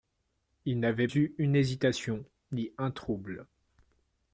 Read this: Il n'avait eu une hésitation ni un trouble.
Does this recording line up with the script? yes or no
yes